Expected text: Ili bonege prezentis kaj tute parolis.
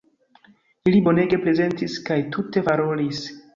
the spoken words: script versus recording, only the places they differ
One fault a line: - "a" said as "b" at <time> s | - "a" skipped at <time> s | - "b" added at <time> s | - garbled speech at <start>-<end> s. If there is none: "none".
none